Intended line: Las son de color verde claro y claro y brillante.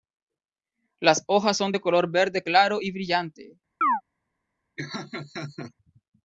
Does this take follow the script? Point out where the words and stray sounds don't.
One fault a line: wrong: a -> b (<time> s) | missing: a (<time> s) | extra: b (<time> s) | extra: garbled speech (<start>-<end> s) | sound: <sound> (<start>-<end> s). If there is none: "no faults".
extra: hojas (1.3 s)
missing: claro y (2.9 s)
sound: chirp (3.8-4.0 s)
sound: laugh (4.8-5.7 s)